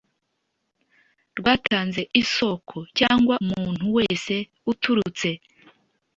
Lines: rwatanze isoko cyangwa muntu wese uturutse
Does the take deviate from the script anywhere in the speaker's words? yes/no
no